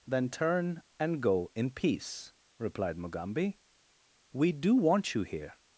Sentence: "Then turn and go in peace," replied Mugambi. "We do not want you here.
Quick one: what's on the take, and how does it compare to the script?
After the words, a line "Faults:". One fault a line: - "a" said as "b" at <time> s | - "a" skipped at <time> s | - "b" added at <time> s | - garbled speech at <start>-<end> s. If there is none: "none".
"Then turn and go in peace," replied Mugambi. "We do want you here.
Faults:
- "not" skipped at 4.7 s